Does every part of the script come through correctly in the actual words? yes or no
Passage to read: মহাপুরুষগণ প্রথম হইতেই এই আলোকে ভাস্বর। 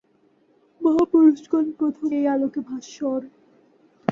no